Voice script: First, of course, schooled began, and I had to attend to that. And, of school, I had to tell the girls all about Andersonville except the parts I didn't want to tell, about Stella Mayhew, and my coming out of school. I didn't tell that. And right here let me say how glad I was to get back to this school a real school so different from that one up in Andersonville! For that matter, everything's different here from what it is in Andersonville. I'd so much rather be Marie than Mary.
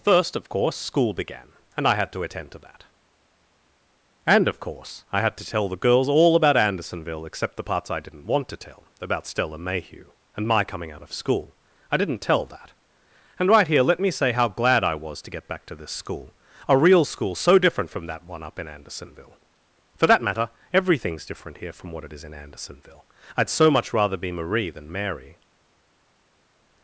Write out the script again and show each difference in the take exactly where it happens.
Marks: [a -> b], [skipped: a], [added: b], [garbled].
First, of course, [schooled -> school] began, and I had to attend to that. And, of [school, -> course] I had to tell the girls all about Andersonville except the parts I didn't want to tell, about Stella Mayhew, and my coming out of school. I didn't tell that. And right here let me say how glad I was to get back to this school a real school so different from that one up in Andersonville! For that matter, everything's different here from what it is in Andersonville. I'd so much rather be Marie than Mary.